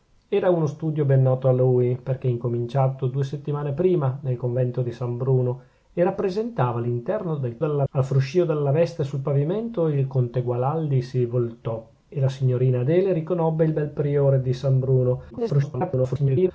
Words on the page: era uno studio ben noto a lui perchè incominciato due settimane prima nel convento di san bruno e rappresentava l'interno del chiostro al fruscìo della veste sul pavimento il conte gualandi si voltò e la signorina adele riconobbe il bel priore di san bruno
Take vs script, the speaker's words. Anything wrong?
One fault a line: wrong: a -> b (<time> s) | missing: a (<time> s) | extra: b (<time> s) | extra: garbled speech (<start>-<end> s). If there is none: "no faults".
wrong: chiostro -> della (7.6 s)
extra: garbled speech (15.3-16.5 s)